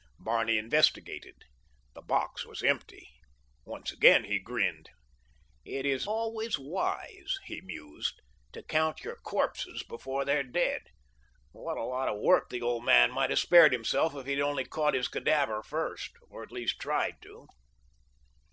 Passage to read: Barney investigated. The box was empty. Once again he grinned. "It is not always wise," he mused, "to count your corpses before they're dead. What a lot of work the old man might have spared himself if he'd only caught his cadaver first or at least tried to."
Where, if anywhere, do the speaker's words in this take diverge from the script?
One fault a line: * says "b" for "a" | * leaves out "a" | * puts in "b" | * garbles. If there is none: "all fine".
* leaves out "not"